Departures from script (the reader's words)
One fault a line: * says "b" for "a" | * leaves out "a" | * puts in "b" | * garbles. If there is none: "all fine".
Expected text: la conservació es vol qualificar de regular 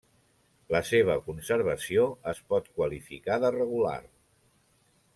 * puts in "seva"
* says "pot" for "vol"